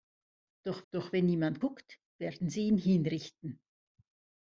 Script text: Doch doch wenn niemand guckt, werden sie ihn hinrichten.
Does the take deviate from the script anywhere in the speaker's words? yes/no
no